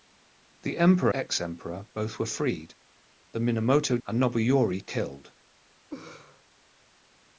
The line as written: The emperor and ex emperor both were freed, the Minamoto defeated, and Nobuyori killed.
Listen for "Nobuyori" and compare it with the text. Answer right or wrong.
right